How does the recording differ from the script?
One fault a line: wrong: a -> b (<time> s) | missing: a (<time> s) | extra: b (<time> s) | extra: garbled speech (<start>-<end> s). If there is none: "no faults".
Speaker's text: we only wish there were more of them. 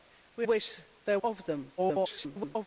missing: only (0.5 s)
missing: were more (1.2 s)
extra: garbled speech (1.8-2.7 s)